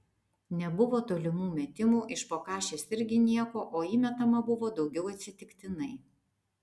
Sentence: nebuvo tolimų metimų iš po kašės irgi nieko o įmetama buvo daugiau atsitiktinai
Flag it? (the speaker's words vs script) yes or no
no